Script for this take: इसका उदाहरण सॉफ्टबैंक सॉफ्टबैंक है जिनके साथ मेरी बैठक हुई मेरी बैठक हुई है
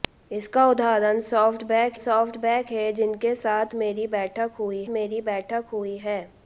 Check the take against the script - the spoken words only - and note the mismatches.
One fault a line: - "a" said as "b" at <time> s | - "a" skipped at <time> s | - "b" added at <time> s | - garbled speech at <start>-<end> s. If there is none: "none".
none